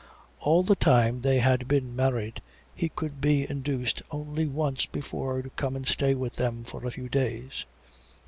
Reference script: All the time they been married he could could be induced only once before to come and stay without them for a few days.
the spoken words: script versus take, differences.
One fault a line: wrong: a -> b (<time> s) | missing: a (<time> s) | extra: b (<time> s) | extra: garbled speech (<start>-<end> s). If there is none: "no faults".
extra: had (1.4 s)
missing: could (3.2 s)
wrong: without -> with (6.2 s)